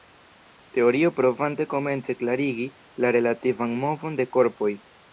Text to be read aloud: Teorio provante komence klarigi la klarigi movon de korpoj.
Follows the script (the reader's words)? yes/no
no